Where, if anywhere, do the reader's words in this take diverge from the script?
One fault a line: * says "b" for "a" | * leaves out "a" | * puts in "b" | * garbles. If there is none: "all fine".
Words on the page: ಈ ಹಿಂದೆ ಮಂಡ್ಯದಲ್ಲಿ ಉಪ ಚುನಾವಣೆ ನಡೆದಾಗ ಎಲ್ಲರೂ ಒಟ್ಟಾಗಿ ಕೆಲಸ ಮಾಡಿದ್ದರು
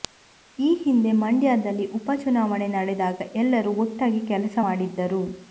all fine